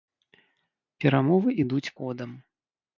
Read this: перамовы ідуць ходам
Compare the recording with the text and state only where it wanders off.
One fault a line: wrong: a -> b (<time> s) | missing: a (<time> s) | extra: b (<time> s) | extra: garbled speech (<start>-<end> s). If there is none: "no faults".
no faults